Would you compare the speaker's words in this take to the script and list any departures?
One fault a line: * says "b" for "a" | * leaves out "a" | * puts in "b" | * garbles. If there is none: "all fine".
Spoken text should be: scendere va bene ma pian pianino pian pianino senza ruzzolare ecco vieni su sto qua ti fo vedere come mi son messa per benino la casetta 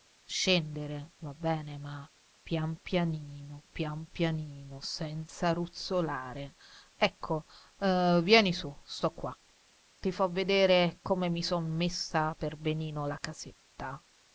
all fine